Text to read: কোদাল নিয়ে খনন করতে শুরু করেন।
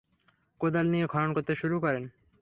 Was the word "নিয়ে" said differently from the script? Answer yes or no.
no